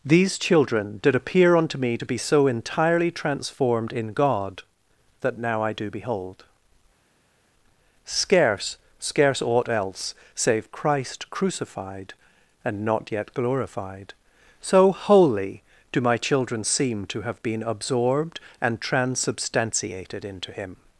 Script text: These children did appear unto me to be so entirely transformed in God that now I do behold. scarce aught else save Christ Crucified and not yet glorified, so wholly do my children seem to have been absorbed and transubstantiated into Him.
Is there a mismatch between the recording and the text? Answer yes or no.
yes